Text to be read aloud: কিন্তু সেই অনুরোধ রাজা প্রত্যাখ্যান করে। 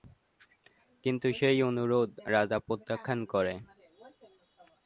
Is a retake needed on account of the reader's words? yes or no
no